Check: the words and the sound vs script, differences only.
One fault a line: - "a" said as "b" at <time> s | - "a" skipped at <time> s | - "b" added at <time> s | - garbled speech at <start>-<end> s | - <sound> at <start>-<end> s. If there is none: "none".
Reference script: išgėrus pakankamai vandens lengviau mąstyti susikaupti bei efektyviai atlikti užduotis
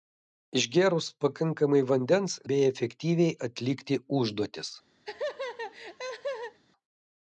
- "lengviau mąstyti susikaupti" skipped at 2.4 s
- laugh at 5.0-6.6 s